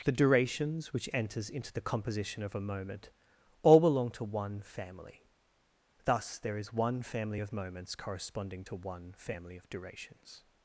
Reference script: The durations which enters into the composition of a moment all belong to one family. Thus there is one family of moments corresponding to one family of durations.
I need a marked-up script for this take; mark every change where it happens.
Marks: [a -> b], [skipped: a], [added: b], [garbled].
The durations which enters into the composition of a moment all belong to one family. Thus there is one family of moments corresponding to one family of durations.